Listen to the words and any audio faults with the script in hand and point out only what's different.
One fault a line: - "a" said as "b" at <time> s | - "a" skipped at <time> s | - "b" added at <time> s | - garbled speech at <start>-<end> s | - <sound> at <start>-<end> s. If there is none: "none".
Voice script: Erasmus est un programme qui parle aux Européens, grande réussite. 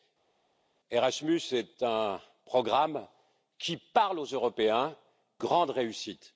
none